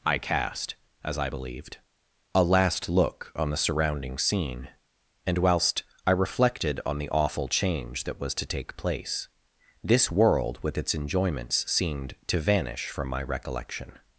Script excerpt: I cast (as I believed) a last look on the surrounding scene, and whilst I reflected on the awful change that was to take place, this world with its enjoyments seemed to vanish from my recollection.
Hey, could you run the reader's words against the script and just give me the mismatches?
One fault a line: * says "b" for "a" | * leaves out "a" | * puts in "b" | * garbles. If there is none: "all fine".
all fine